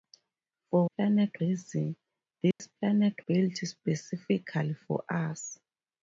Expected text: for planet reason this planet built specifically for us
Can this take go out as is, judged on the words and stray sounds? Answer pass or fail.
fail